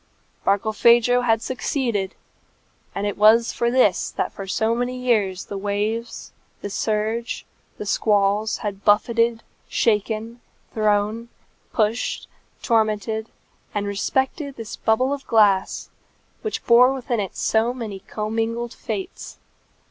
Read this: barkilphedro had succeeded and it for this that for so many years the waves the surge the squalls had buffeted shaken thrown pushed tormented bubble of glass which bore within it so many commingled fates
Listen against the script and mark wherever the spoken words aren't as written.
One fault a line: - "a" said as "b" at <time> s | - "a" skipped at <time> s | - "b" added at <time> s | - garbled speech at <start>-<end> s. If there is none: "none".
- "was" added at 3.2 s
- "and respected this" added at 13.7 s